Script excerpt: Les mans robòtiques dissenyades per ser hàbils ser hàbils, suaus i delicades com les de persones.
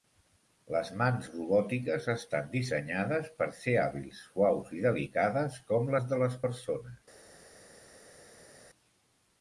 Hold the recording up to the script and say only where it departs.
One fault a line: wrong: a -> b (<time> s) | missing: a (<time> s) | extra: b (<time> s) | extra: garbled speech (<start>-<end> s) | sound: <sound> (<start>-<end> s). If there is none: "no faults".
extra: estan (2.1 s)
missing: ser hàbils (4.2 s)
extra: les (6.3 s)